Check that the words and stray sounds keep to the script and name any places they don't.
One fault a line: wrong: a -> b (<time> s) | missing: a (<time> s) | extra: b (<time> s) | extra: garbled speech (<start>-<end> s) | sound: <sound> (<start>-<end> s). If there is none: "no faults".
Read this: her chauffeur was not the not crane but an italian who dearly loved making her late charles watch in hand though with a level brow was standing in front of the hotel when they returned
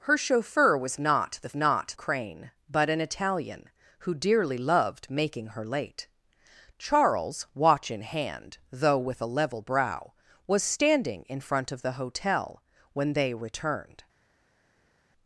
no faults